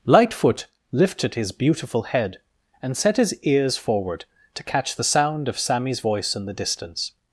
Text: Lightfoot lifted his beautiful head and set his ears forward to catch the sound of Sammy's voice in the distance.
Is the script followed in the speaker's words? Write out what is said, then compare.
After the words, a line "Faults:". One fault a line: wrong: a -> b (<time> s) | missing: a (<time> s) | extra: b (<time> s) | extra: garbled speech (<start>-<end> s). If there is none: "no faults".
Lightfoot lifted his beautiful head and set his ears forward to catch the sound of Sammy's voice in the distance.
Faults:
no faults